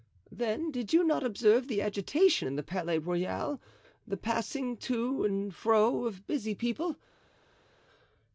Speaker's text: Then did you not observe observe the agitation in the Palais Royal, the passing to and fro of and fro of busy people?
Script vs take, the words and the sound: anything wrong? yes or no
yes